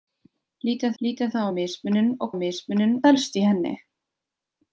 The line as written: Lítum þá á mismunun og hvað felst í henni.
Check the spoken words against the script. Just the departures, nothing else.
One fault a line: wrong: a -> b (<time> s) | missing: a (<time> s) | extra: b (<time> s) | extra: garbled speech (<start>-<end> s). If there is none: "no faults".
extra: lítum (1.0 s)
wrong: hvað -> mismunun (2.4 s)